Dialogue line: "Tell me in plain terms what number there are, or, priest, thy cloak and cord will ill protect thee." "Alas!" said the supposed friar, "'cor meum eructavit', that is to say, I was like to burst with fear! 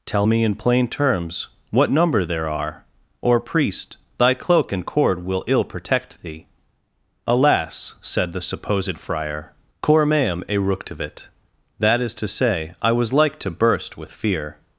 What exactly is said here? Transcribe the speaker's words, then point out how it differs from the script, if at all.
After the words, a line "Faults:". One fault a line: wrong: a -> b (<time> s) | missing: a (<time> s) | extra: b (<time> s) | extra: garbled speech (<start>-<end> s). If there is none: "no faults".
"Tell me in plain terms what number there are, or, priest, thy cloak and cord will ill protect thee." "Alas!" said the supposed friar, "'cor meum eructavit', that is to say, I was like to burst with fear!
Faults:
no faults